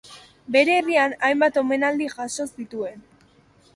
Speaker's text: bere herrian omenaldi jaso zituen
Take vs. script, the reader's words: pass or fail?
fail